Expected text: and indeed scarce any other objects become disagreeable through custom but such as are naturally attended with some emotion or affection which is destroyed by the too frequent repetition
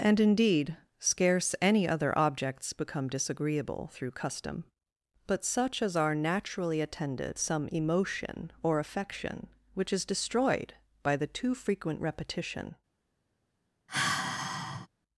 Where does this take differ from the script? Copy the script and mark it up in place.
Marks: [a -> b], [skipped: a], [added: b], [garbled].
and indeed scarce any other objects become disagreeable through custom but such as are naturally attended [skipped: with] some emotion or affection which is destroyed by the too frequent repetition